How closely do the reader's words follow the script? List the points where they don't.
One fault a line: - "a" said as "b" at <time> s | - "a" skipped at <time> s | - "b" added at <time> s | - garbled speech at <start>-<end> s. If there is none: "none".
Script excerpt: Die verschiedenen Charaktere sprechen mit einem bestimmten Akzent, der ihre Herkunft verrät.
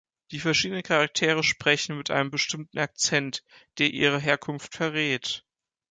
none